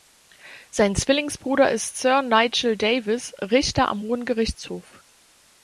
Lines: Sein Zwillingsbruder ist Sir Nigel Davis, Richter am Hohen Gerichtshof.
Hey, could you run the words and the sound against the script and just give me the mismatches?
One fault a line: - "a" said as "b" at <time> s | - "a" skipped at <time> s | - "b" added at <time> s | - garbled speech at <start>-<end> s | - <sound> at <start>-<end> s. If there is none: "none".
none